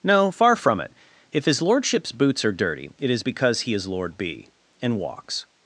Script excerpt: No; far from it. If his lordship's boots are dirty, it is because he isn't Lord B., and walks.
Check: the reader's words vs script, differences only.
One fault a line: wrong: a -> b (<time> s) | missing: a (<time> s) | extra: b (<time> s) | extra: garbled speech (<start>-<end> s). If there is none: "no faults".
wrong: isn't -> is (3.7 s)